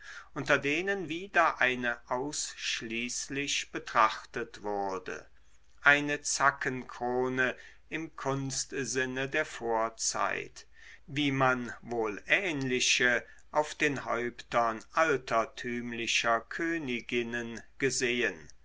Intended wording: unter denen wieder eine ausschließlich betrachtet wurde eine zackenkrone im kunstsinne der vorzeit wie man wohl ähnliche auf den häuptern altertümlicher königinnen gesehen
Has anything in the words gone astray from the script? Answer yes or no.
no